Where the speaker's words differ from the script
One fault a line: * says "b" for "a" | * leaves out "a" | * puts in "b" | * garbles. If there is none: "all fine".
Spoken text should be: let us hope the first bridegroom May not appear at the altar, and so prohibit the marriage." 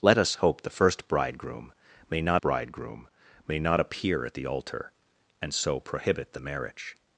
* puts in "bridegroom May not"